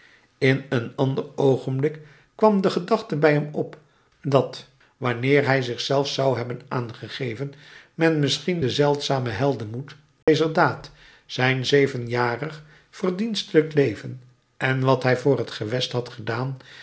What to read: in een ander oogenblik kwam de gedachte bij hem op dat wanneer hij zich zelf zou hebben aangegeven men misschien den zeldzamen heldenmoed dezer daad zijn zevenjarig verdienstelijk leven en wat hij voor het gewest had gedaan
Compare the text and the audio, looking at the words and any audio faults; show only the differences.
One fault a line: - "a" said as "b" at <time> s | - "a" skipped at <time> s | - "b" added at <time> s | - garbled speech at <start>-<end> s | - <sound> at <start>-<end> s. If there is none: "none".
- dropout at 10.2-10.3 s